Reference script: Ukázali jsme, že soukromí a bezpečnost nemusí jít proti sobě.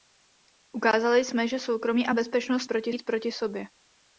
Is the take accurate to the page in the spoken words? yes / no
no